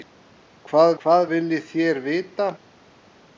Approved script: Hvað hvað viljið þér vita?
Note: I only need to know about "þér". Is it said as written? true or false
true